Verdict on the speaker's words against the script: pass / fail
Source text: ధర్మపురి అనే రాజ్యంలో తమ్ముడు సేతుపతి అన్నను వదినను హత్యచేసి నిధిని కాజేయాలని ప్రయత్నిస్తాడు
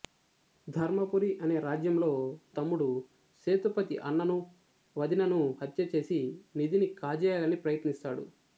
pass